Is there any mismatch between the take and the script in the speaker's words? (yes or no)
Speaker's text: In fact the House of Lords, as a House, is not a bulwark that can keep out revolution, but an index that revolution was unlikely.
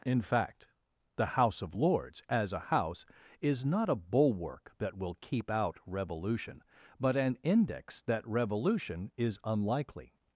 yes